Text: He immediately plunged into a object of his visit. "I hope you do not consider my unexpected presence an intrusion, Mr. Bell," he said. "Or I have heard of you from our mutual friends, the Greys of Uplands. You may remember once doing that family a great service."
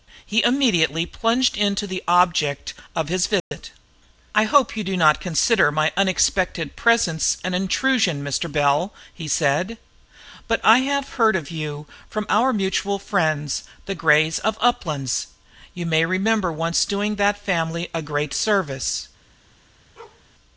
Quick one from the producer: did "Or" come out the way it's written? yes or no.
no